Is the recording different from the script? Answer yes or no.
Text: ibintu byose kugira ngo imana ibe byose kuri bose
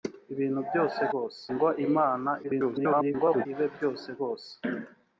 yes